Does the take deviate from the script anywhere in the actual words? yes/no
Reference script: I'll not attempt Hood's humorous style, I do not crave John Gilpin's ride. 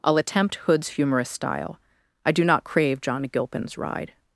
yes